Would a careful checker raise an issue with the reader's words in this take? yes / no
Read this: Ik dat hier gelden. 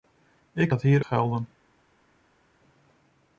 no